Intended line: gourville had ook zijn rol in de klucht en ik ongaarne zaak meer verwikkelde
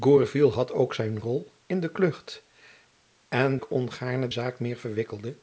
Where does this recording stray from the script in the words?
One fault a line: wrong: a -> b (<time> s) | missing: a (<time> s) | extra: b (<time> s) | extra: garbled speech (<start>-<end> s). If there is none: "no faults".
no faults